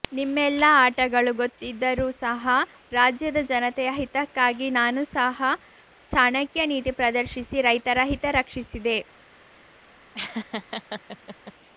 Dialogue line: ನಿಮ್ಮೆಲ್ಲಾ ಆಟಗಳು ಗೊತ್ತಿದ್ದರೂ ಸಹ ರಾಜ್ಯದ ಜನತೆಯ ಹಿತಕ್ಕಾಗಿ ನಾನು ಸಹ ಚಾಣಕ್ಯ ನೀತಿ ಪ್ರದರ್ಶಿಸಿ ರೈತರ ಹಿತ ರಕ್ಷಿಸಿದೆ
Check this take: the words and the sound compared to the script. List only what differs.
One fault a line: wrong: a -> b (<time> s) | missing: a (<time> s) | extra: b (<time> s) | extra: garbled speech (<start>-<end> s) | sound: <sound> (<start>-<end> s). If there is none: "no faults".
sound: laugh (10.1-11.5 s)